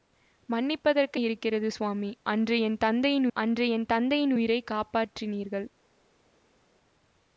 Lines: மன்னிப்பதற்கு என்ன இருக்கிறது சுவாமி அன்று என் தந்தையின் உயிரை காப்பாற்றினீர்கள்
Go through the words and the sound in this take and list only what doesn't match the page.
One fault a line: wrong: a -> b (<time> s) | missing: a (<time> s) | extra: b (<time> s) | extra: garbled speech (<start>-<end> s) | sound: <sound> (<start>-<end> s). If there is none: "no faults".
missing: என்ன (1.2 s)
extra: அன்று என் தந்தையின் (3.4 s)